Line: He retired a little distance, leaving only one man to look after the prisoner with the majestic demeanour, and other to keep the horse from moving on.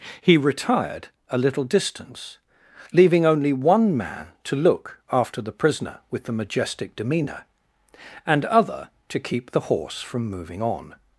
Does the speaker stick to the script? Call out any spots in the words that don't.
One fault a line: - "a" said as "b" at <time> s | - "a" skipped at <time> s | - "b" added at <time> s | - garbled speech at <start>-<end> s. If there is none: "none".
none